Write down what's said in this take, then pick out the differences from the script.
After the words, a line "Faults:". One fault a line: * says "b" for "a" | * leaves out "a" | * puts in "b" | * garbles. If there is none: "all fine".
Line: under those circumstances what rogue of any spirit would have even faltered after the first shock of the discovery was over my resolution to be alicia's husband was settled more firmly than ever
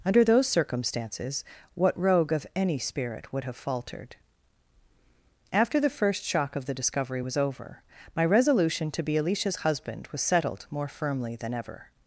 under those circumstances what rogue of any spirit would have faltered after the first shock of the discovery was over my resolution to be alicia's husband was settled more firmly than ever
Faults:
* leaves out "even"